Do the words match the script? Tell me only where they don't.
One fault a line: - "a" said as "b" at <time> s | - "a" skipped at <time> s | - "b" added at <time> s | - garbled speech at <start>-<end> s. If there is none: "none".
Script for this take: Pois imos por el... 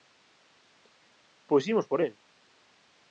none